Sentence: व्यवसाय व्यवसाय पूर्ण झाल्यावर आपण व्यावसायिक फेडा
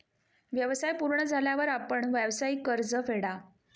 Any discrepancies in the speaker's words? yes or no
yes